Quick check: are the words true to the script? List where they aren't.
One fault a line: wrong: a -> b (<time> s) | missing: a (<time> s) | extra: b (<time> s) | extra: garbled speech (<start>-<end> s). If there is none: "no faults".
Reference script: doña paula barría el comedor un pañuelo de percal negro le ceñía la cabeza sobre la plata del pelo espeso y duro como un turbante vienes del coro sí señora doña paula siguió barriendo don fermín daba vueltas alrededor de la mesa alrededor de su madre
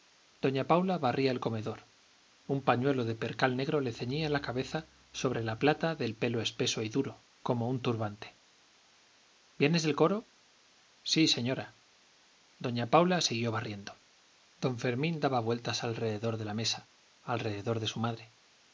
no faults